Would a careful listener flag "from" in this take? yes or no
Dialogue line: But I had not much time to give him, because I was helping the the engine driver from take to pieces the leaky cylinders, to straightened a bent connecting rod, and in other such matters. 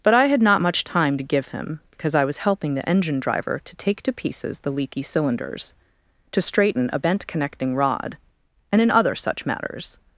yes